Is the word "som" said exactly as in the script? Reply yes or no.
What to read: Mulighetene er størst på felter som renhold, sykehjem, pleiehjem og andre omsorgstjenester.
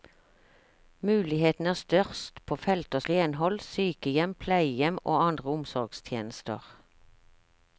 no